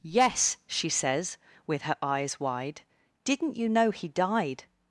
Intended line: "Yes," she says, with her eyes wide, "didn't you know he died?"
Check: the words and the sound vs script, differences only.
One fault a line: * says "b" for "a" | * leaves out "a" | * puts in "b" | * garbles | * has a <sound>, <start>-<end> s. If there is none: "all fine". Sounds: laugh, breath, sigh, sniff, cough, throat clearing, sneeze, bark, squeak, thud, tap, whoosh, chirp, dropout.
all fine